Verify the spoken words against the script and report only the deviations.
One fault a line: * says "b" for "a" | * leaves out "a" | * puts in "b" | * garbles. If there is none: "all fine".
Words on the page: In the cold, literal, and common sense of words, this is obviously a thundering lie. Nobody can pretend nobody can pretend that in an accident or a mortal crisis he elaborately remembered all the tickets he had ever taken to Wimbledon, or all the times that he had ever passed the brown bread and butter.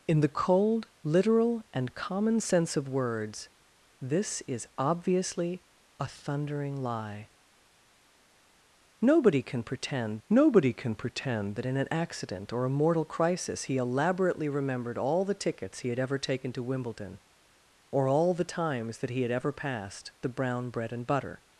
all fine